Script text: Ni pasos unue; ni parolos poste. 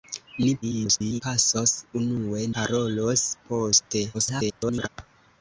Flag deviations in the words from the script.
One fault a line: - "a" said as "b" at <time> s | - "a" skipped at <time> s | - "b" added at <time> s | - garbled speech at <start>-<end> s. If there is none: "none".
- garbled speech at 0.6-1.2 s
- "ni" skipped at 2.4 s
- garbled speech at 4.1-4.9 s